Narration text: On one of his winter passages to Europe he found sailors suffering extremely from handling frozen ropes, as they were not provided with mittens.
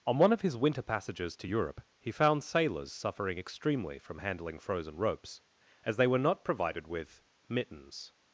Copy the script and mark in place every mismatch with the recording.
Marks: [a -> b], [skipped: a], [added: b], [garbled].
On one of his winter passages to Europe he found sailors suffering extremely from handling frozen ropes, as they were not provided with mittens.